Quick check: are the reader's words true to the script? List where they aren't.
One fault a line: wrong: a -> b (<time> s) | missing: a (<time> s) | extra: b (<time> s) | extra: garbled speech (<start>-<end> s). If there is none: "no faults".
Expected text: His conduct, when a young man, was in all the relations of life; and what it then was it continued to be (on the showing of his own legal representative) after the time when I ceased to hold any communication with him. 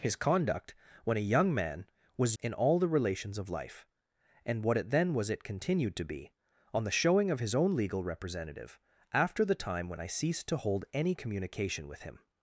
no faults